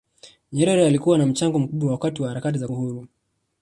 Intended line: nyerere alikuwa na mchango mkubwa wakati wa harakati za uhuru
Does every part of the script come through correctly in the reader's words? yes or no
yes